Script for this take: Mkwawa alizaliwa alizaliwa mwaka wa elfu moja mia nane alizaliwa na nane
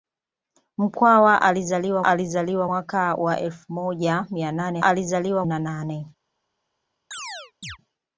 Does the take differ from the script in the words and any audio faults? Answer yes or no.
yes